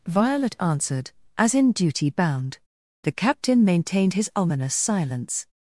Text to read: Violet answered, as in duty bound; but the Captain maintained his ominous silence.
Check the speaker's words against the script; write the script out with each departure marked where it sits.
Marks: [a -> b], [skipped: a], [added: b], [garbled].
Violet answered, as in duty bound; [skipped: but] the Captain maintained his ominous silence.